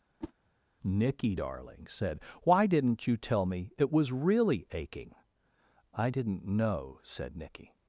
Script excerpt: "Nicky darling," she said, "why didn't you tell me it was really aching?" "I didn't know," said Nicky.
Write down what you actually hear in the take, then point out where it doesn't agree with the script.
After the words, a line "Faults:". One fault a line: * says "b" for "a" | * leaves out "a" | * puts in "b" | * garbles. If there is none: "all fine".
"Nicky darling," said, "why didn't you tell me it was really aching?" "I didn't know," said Nicky.
Faults:
* leaves out "she"